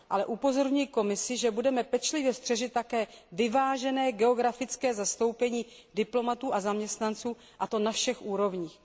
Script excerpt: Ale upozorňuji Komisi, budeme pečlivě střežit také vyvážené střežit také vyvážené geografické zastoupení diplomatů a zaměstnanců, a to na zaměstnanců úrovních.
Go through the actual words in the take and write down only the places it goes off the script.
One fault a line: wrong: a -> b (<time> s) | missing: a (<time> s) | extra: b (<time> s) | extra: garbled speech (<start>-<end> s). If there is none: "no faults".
extra: že (1.4 s)
missing: střežit také vyvážené (4.1 s)
wrong: zaměstnanců -> všech (7.9 s)